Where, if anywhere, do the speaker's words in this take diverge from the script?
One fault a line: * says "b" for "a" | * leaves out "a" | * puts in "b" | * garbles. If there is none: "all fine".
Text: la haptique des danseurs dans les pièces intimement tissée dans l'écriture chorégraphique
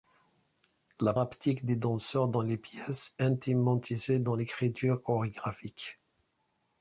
all fine